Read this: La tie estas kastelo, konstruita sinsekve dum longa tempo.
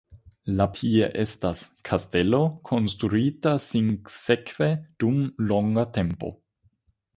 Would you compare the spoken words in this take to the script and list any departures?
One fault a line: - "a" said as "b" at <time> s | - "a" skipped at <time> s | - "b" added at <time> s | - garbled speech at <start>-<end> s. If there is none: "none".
none